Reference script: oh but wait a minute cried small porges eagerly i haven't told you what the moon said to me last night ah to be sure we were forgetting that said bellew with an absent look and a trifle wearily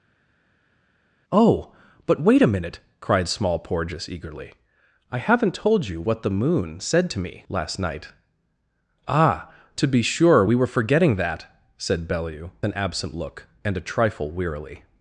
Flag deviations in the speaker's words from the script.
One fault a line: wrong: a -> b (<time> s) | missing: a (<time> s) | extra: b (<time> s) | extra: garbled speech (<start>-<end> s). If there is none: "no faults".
missing: with (12.5 s)